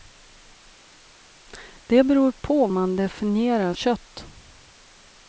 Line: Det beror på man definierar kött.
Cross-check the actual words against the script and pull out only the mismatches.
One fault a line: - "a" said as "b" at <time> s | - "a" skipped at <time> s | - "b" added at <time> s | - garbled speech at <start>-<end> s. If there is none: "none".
none